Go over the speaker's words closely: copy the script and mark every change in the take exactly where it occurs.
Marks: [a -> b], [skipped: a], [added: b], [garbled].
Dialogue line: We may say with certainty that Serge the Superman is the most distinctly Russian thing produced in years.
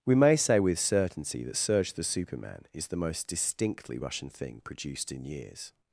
We may say with certainty that Serge the Superman is the most distinctly Russian thing produced in years.